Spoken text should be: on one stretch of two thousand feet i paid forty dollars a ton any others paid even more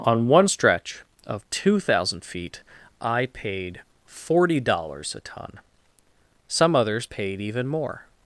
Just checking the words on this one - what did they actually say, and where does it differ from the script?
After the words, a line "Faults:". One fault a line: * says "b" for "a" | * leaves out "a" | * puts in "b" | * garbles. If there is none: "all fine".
on one stretch of two thousand feet i paid forty dollars a ton some others paid even more
Faults:
* says "some" for "any"